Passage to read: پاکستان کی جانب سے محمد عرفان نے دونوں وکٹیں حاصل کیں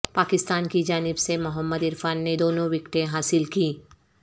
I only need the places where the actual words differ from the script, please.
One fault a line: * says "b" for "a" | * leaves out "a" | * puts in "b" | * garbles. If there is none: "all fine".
all fine